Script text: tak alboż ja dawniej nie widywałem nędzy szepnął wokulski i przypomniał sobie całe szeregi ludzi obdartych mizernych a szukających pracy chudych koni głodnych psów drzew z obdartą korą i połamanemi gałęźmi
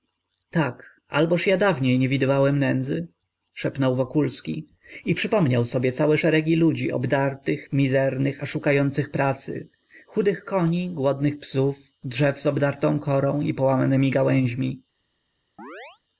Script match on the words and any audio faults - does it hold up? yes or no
no